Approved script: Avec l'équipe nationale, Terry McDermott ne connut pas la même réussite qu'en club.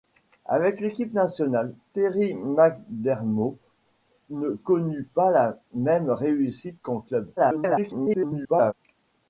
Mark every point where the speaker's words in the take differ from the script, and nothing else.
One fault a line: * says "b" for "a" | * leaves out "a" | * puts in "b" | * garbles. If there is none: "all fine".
* garbles